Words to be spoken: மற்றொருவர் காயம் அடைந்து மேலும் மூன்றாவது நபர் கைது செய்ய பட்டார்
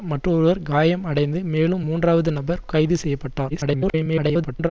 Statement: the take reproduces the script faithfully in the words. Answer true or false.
false